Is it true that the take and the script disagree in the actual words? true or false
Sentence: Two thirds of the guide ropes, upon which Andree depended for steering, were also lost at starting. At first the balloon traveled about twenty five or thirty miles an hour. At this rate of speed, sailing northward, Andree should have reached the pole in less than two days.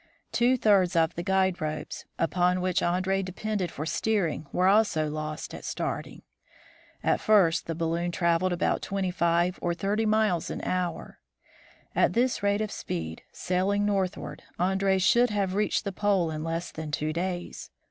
false